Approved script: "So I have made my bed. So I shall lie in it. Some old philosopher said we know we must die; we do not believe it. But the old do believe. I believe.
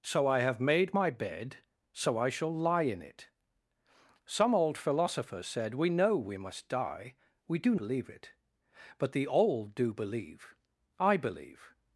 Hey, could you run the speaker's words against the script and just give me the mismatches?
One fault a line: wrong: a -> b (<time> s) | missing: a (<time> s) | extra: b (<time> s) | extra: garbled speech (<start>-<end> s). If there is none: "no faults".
missing: not (7.8 s)